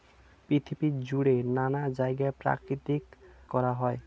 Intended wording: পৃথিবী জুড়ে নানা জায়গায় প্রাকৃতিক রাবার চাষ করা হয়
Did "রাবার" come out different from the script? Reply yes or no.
yes